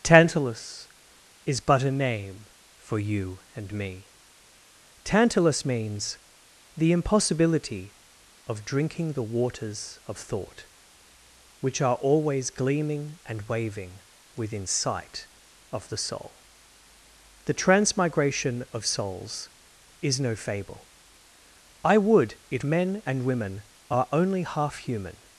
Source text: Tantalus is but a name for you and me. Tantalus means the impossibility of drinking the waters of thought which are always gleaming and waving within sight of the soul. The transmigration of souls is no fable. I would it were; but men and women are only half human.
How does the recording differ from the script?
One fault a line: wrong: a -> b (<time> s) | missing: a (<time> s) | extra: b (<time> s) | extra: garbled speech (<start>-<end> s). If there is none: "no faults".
missing: were but (22.6 s)